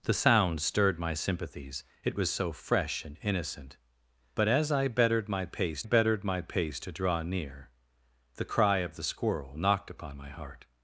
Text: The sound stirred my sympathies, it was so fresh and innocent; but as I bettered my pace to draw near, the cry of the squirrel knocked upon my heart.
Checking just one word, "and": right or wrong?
right